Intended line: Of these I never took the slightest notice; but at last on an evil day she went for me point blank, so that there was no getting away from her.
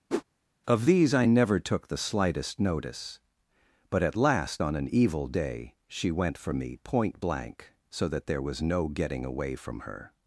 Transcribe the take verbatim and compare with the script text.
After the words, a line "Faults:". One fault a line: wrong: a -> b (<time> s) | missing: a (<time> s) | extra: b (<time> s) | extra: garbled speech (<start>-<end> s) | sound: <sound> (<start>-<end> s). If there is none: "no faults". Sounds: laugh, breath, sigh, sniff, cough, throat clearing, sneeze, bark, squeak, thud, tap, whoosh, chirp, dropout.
Of these I never took the slightest notice; but at last on an evil day she went for me point blank, so that there was no getting away from her.
Faults:
sound: whoosh (0.1-0.2 s)